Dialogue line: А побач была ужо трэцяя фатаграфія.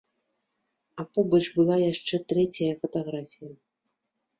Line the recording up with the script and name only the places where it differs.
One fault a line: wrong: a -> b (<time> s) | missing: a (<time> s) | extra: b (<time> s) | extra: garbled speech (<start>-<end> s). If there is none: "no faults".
wrong: ужо -> яшчэ (1.9 s)